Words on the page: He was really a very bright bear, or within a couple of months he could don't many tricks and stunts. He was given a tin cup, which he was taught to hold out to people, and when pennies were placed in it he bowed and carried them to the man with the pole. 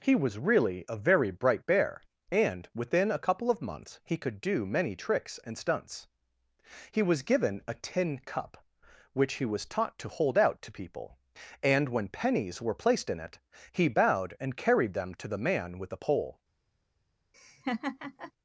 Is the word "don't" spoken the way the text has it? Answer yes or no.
no